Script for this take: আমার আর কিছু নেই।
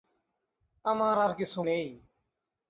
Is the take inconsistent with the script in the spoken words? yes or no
no